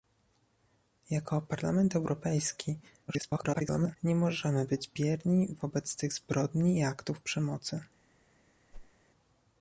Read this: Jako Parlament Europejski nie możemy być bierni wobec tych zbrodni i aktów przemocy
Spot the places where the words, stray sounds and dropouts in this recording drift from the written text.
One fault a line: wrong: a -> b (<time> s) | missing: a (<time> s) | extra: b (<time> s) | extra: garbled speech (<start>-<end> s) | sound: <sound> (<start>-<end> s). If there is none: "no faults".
extra: garbled speech (3.1-4.0 s)
sound: whoosh (8.7-8.9 s)